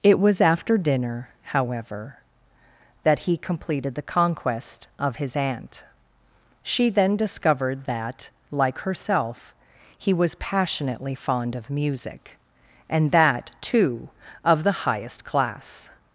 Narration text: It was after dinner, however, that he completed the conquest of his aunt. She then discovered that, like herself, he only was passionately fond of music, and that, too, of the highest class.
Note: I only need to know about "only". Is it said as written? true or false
false